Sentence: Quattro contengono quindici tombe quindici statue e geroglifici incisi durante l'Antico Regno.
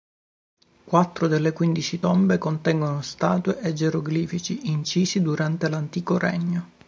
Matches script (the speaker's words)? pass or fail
fail